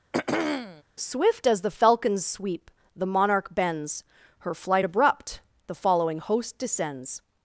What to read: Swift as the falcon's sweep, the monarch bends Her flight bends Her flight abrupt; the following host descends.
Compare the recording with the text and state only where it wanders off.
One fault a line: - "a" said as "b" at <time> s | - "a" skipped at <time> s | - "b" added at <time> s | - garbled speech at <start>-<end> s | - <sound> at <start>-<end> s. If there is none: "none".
- throat clearing at 0.1-0.8 s
- "bends Her flight" skipped at 4.8 s